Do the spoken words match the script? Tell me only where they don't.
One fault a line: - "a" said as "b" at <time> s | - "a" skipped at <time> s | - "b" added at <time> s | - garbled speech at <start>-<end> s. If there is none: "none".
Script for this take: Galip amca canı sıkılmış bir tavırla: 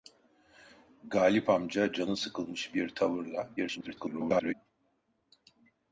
- garbled speech at 3.6-4.5 s